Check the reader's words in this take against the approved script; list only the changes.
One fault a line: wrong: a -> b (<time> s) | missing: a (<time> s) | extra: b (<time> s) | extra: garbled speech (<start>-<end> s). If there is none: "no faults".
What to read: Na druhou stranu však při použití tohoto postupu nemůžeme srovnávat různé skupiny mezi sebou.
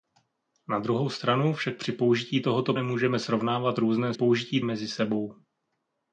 missing: postupu (2.7 s)
wrong: skupiny -> použití (4.1 s)